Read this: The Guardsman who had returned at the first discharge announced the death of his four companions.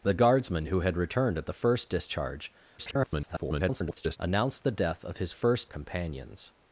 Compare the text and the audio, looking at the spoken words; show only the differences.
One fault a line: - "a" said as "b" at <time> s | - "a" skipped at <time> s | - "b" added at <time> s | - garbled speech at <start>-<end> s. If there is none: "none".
- garbled speech at 2.8-4.2 s
- "four" said as "first" at 5.3 s